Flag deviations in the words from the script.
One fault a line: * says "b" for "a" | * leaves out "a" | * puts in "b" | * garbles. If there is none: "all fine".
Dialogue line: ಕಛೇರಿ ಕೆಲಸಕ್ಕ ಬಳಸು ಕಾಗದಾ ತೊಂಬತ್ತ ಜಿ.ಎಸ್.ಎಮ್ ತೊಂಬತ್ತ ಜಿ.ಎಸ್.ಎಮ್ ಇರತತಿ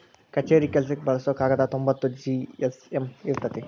* leaves out "ತೊಂಬತ್ತ ಜಿ.ಎಸ್.ಎಮ್"